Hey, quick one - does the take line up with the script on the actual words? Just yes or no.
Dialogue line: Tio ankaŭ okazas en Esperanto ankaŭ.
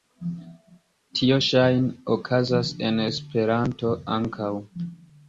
no